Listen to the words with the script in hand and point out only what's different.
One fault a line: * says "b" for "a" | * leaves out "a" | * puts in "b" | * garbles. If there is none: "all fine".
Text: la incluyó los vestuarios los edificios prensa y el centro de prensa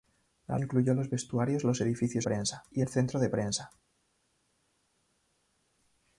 all fine